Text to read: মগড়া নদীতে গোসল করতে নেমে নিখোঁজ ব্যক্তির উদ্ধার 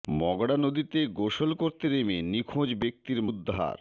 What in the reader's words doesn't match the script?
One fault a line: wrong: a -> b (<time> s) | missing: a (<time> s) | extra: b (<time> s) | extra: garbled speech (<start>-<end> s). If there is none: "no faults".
no faults